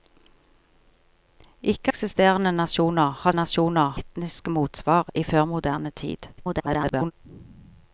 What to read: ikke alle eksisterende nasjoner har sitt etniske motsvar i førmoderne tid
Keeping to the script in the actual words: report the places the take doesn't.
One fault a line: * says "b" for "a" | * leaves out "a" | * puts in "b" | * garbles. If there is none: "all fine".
* leaves out "alle"
* says "nasjoner" for "sitt"
* garbles